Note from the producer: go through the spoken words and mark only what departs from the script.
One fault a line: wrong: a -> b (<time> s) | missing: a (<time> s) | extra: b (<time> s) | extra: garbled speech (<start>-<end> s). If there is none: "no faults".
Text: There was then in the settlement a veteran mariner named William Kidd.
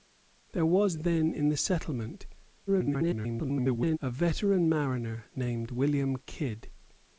extra: garbled speech (2.7-4.0 s)